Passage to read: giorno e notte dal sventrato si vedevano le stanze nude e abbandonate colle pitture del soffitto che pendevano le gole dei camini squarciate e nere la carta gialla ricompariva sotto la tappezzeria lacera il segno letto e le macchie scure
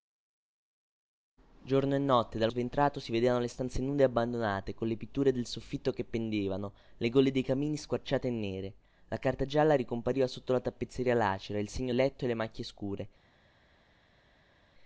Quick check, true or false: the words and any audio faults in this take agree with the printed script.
true